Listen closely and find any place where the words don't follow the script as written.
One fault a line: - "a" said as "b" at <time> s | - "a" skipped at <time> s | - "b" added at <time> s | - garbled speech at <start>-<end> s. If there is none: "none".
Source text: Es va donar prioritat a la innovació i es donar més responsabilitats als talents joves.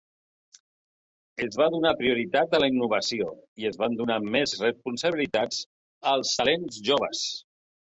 - "van" added at 3.8 s